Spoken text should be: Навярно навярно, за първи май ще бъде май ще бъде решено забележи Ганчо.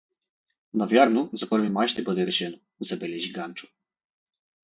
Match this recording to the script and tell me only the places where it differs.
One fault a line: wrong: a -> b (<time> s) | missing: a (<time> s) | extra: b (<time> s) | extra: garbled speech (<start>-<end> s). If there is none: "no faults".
missing: навярно (1.3 s)
missing: май ще бъде (2.3 s)